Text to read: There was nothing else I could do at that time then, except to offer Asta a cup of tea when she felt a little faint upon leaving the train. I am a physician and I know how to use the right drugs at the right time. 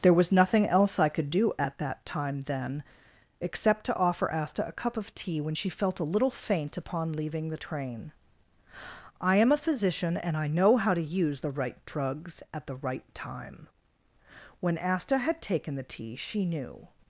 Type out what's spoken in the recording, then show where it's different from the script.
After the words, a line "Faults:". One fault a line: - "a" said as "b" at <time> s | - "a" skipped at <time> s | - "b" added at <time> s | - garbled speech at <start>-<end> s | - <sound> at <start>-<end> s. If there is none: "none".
There was nothing else I could do at that time then, except to offer Asta a cup of tea when she felt a little faint upon leaving the train. I am a physician and I know how to use the right drugs at the right time. When Asta had taken the tea, she knew
Faults:
- "When Asta had taken the tea she knew" added at 14.6 s